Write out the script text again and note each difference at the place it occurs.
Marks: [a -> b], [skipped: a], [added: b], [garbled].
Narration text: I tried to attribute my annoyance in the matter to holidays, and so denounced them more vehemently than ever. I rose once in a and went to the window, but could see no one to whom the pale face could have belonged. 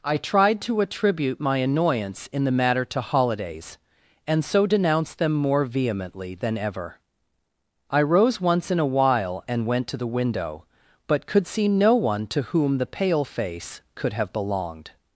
I tried to attribute my annoyance in the matter to holidays, and so denounced them more vehemently than ever. I rose once in a [added: while] and went to the window, but could see no one to whom the pale face could have belonged.